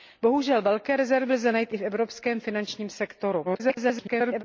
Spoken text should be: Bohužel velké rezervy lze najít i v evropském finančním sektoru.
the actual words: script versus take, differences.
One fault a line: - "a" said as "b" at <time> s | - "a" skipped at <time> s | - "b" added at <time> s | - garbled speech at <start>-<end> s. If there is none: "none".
- garbled speech at 3.4-4.4 s